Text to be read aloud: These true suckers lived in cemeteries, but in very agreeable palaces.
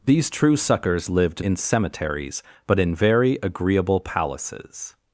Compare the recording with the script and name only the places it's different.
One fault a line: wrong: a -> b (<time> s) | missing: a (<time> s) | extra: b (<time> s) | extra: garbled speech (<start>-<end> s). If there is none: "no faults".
no faults